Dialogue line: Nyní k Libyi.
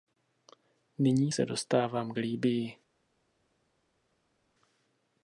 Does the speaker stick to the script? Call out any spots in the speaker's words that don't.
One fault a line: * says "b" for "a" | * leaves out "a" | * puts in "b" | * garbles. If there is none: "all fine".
* puts in "se dostávám"